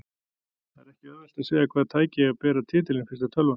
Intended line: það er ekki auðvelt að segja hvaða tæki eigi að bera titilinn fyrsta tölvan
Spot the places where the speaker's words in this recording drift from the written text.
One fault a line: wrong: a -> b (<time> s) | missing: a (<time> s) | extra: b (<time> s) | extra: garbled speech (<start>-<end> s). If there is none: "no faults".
no faults